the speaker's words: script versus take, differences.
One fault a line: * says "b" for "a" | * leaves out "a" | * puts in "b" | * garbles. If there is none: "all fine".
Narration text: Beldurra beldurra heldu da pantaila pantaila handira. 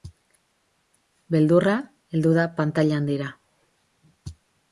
* leaves out "beldurra"
* leaves out "pantaila"